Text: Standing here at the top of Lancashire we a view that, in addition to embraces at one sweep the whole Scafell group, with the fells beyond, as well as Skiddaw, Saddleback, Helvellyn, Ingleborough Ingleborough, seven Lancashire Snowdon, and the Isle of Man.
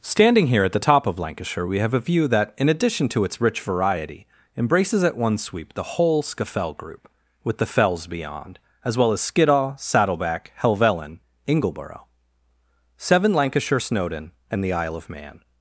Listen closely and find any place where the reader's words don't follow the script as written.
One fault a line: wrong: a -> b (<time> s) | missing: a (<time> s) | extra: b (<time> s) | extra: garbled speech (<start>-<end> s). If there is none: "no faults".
extra: have (1.8 s)
extra: its rich variety (3.3 s)
missing: Ingleborough (12.1 s)